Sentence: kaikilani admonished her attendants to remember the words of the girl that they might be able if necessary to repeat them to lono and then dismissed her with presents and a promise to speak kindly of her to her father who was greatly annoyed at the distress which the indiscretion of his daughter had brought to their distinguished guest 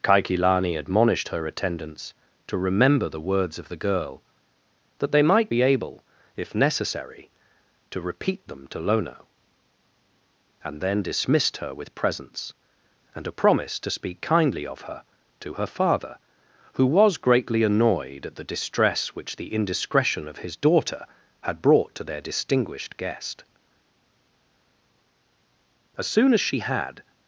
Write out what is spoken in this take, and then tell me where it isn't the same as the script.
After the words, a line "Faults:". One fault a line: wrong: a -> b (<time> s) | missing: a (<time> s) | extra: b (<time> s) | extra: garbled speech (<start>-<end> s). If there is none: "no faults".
kaikilani admonished her attendants to remember the words of the girl that they might be able if necessary to repeat them to lono and then dismissed her with presents and a promise to speak kindly of her to her father who was greatly annoyed at the distress which the indiscretion of his daughter had brought to their distinguished guest as soon as she had
Faults:
extra: as soon as she had (26.0 s)